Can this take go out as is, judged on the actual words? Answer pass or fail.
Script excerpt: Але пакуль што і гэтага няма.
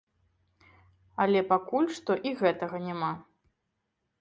pass